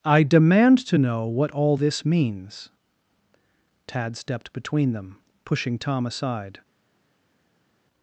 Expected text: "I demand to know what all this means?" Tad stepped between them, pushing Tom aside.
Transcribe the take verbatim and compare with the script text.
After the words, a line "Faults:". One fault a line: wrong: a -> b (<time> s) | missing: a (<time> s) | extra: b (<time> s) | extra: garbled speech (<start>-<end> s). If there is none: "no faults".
"I demand to know what all this means?" Tad stepped between them, pushing Tom aside.
Faults:
no faults